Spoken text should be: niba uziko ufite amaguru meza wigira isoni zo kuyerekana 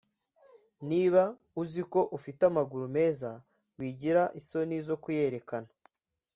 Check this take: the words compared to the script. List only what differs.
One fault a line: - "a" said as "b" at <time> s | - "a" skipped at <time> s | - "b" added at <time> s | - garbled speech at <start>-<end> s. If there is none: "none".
none